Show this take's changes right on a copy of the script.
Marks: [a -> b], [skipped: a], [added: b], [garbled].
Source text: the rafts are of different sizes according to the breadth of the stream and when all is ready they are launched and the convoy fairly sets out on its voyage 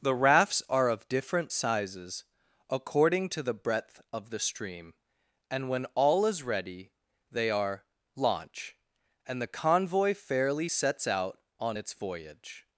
the rafts are of different sizes according to the breadth of the stream and when all is ready they are [launched -> launch] and the convoy fairly sets out on its voyage